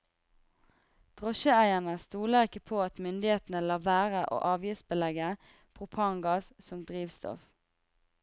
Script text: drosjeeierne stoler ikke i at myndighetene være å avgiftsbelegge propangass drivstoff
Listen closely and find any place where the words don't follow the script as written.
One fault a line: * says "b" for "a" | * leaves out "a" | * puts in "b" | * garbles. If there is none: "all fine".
* says "på" for "i"
* puts in "lar"
* puts in "som"